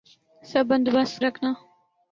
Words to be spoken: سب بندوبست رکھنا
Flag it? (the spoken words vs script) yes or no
no